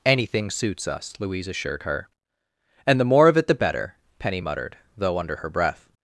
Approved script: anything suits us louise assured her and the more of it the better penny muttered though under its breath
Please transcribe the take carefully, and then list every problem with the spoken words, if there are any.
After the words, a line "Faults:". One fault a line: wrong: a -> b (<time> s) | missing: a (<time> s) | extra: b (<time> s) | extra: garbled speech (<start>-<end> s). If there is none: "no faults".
anything suits us louise assured her and the more of it the better penny muttered though under her breath
Faults:
wrong: its -> her (5.4 s)